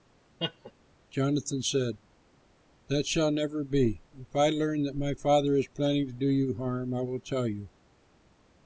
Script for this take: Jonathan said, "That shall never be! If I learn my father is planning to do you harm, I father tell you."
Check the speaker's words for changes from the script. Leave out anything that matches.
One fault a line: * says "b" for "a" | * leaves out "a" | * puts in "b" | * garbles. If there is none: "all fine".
* puts in "that"
* says "will" for "father"